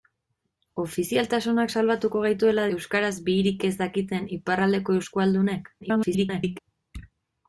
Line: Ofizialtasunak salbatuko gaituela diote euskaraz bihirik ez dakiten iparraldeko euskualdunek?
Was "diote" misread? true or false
true